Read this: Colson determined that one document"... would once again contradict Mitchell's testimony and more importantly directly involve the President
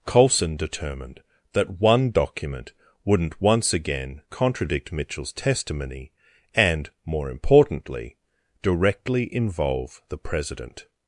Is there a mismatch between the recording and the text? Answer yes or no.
yes